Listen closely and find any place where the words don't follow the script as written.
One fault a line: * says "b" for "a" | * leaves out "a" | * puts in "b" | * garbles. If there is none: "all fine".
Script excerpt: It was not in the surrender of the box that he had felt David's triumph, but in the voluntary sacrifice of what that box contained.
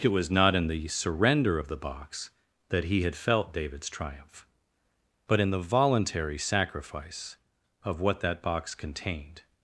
all fine